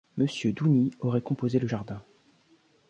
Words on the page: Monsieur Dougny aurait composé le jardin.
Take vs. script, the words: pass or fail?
pass